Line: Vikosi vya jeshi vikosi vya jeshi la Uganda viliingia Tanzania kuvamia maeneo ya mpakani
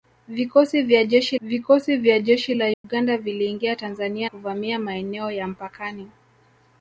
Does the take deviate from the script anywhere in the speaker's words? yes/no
no